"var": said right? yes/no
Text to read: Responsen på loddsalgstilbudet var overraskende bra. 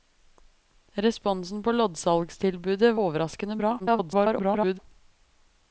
no